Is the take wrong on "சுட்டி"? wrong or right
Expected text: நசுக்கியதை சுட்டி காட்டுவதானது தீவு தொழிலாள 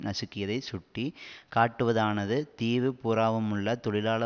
right